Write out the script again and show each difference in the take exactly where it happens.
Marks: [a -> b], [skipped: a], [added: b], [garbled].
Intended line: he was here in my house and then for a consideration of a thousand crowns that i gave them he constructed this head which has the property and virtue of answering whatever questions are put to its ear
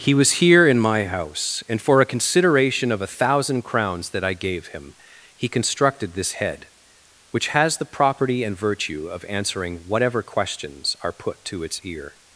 he was here in my house and [skipped: then] for a consideration of a thousand crowns that i gave [them -> him] he constructed this head which has the property and virtue of answering whatever questions are put to its ear